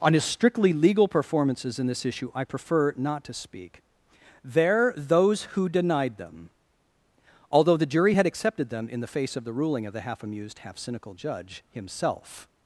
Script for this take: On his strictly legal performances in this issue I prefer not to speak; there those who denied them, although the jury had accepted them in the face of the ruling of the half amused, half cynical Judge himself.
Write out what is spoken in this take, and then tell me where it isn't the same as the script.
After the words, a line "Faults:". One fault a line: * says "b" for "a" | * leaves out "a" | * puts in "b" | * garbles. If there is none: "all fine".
On his strictly legal performances in this issue I prefer not to speak; there those who denied them, although the jury had accepted them in the face of the ruling of the half amused, half cynical Judge himself.
Faults:
all fine